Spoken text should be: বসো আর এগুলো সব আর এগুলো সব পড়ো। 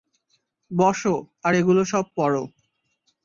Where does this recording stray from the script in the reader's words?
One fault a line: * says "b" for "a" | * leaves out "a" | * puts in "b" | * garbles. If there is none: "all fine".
* leaves out "আর এগুলো সব"